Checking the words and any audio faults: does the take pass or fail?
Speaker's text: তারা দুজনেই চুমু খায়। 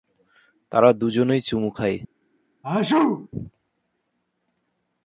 fail